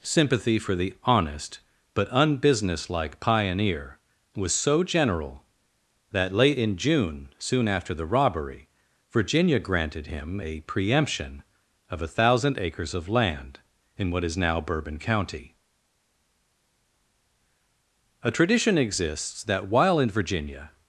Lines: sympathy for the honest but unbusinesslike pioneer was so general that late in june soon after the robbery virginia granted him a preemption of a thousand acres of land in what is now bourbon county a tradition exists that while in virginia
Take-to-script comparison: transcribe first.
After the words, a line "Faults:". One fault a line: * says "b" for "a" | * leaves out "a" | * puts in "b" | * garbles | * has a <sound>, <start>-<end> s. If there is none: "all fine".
sympathy for the honest but unbusinesslike pioneer was so general that late in june soon after the robbery virginia granted him a preemption of a thousand acres of land in what is now bourbon county a tradition exists that while in virginia
Faults:
all fine